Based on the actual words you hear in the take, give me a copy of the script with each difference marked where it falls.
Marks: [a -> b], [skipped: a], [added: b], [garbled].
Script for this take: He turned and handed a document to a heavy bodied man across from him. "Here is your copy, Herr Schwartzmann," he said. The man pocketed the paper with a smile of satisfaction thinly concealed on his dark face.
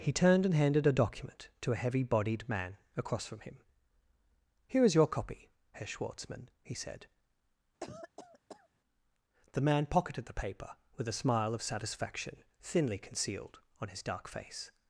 He turned and handed a document to a heavy bodied man across from him. "Here is your copy, Herr Schwartzmann," he said. The man pocketed the paper with a smile of satisfaction thinly concealed on his dark face.